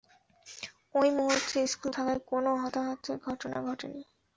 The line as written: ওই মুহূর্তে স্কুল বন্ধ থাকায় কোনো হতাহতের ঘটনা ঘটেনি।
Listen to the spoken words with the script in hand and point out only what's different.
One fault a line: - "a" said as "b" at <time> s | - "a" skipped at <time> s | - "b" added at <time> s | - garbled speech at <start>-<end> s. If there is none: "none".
- "বন্ধ" skipped at 1.9 s